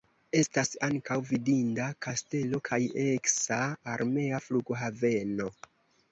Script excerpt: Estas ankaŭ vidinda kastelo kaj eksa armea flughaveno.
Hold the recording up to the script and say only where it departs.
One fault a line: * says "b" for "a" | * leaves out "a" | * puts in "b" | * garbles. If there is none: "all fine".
all fine